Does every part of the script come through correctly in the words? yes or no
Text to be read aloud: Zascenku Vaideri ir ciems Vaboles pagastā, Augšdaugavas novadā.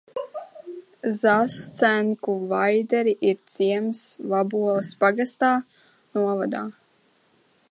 no